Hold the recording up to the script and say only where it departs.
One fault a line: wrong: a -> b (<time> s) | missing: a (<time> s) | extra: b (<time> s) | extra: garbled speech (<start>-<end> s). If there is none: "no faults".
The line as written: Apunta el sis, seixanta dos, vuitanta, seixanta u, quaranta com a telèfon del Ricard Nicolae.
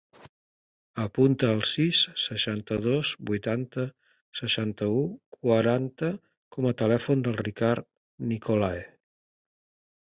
no faults